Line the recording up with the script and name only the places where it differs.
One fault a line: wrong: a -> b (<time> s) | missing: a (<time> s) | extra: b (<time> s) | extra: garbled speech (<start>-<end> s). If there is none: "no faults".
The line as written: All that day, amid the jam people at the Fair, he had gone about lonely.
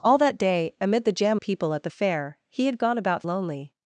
no faults